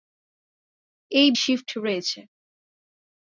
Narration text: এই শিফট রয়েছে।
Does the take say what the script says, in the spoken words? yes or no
yes